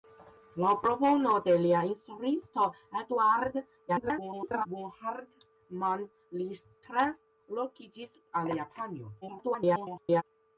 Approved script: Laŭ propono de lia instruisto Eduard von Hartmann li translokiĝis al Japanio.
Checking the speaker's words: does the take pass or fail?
fail